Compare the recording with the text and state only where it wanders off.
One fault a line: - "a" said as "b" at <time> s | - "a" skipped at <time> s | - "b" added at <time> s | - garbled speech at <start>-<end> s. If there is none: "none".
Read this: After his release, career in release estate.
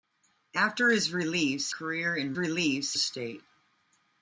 none